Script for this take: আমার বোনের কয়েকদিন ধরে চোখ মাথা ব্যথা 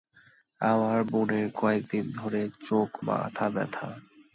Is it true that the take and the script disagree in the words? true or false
false